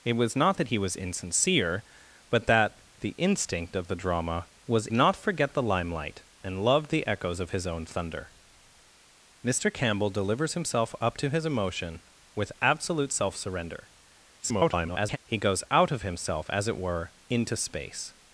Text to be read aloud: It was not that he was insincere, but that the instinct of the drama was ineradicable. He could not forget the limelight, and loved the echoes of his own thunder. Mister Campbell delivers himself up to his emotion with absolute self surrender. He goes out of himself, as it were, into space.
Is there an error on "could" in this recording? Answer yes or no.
yes